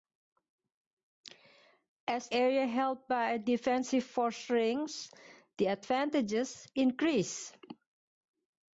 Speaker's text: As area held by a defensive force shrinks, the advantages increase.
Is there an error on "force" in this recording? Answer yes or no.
no